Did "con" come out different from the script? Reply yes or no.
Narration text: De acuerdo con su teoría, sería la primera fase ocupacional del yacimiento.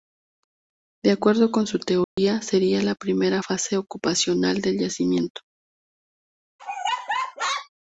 no